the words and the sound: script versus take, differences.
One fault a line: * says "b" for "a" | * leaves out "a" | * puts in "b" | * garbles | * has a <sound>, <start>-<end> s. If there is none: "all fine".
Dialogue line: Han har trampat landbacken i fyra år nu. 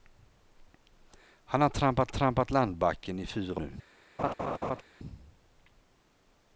* puts in "trampat"
* leaves out "år"
* has a laugh, 4.2-4.8 s